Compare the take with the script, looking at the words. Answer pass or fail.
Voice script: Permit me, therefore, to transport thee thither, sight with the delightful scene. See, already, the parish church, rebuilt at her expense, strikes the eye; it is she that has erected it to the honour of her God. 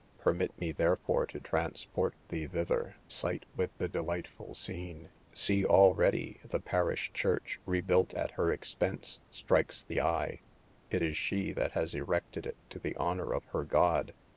pass